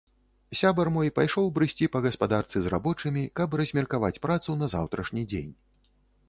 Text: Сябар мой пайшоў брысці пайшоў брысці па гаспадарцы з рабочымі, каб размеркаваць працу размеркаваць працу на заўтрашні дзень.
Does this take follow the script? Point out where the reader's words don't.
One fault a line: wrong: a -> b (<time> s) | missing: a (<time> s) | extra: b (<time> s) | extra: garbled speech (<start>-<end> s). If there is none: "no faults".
missing: пайшоў брысці (1.9 s)
missing: размеркаваць працу (4.6 s)